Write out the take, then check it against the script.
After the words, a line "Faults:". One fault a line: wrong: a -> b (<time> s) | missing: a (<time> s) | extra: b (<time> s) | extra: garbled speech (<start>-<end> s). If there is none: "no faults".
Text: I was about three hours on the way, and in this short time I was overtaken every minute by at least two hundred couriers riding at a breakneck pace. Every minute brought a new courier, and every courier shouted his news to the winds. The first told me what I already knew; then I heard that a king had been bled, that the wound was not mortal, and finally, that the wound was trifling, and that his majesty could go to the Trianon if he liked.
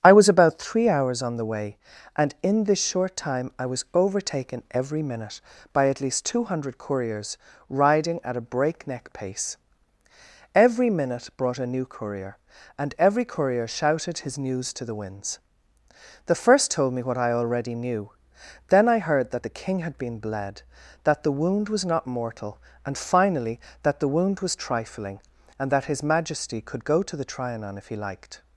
I was about three hours on the way, and in this short time I was overtaken every minute by at least two hundred couriers riding at a breakneck pace. Every minute brought a new courier, and every courier shouted his news to the winds. The first told me what I already knew; then I heard that the king had been bled, that the wound was not mortal, and finally, that the wound was trifling, and that his majesty could go to the Trianon if he liked.
Faults:
wrong: a -> the (19.4 s)